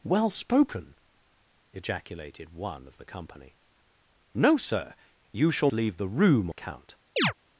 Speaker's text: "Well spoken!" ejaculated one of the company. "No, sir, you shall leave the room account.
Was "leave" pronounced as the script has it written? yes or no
yes